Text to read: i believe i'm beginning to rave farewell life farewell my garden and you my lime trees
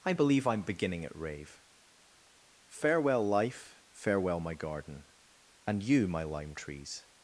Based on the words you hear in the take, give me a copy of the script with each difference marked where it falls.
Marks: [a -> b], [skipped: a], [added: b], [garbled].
i believe i'm beginning [to -> at] rave farewell life farewell my garden and you my lime trees